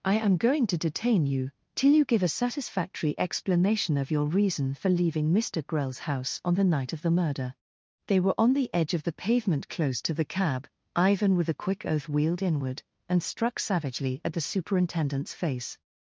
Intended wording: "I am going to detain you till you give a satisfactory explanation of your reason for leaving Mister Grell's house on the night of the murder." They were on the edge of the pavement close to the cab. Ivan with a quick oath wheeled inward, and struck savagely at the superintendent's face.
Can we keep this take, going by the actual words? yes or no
yes